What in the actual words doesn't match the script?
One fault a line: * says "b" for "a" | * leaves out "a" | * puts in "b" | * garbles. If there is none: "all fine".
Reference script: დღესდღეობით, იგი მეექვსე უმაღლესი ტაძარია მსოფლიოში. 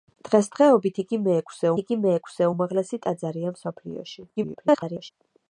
* puts in "იგი მეექვსე"
* garbles